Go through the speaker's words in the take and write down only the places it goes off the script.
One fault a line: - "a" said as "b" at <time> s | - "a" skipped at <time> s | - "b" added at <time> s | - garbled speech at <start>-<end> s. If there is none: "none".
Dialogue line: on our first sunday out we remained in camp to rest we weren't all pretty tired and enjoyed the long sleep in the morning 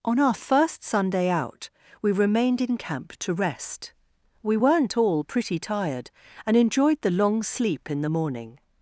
none